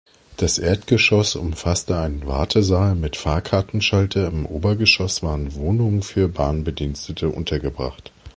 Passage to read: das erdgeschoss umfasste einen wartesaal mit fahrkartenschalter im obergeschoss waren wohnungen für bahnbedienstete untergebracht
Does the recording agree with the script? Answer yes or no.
yes